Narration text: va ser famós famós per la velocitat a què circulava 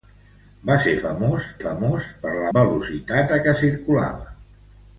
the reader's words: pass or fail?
pass